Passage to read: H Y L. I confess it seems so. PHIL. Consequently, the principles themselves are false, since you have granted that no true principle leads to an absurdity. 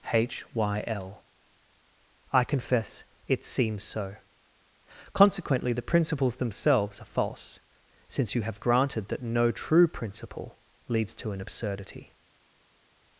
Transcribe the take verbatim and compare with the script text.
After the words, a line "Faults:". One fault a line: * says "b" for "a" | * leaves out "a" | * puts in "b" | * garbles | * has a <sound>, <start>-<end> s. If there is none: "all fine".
H Y L. I confess it seems so. Consequently, the principles themselves are false, since you have granted that no true principle leads to an absurdity.
Faults:
* leaves out "PHIL"